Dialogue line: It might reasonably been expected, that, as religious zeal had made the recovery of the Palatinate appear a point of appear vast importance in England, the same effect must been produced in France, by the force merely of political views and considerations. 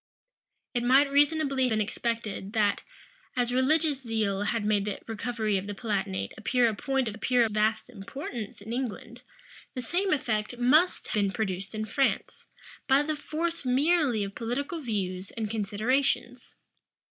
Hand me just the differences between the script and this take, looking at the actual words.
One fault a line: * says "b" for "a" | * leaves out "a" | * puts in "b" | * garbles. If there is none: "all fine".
all fine